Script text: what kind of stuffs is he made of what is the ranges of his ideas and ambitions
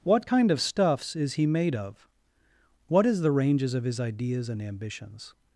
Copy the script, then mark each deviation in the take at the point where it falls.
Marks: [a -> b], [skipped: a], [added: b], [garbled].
what kind of stuffs is he made of what is the ranges of his ideas and ambitions